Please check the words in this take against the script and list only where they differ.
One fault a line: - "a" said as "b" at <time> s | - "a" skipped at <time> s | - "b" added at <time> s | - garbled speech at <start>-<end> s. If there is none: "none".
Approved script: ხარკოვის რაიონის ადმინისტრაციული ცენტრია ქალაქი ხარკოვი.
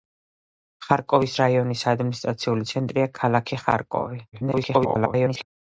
- garbled speech at 4.3-5.5 s